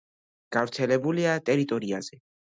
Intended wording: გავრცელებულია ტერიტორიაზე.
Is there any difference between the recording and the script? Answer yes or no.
no